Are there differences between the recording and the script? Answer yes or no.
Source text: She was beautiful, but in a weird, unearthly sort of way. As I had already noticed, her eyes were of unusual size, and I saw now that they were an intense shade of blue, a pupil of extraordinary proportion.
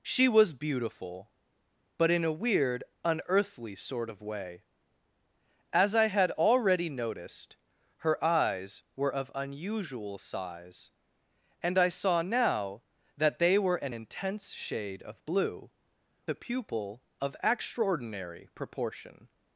no